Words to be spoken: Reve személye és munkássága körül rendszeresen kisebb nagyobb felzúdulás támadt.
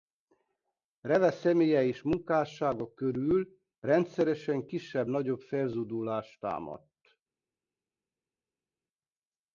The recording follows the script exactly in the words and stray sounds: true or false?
true